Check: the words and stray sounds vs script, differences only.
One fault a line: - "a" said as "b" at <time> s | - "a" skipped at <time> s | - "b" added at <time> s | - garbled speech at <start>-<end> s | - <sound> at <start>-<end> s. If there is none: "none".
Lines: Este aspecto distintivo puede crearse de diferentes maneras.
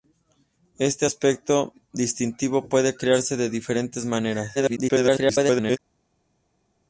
- garbled speech at 4.5-5.8 s